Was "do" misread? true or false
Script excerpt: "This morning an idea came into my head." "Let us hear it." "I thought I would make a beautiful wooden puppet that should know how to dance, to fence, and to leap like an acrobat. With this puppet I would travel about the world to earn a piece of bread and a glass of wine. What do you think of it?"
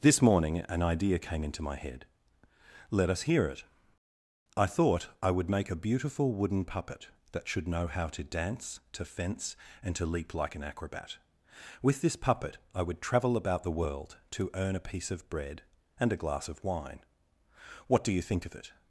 false